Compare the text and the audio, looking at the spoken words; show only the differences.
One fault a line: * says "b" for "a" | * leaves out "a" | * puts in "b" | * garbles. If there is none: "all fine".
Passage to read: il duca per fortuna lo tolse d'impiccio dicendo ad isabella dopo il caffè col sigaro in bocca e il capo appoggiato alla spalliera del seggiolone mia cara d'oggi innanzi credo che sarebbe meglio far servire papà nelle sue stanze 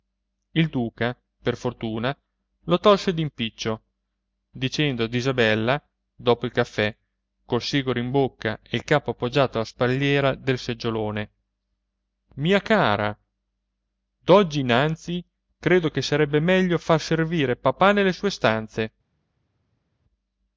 all fine